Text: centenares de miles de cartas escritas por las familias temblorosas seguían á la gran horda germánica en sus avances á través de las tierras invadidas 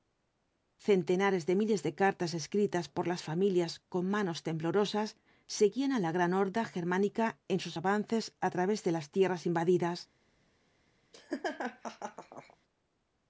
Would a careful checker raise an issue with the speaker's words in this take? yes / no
yes